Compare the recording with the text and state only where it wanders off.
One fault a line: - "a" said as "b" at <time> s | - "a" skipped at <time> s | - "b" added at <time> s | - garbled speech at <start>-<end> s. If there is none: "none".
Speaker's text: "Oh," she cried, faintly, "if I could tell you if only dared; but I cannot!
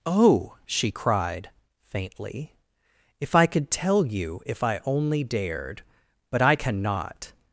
- "I" added at 4.6 s